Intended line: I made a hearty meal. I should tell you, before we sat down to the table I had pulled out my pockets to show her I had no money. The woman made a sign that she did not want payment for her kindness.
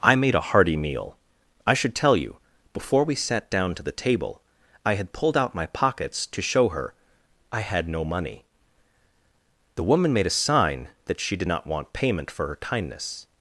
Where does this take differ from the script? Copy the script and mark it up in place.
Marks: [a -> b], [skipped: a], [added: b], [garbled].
I made a hearty meal. I should tell you, before we sat down to the table I had pulled out my pockets to show her I had no money. The woman made a sign that she did not want payment for her kindness.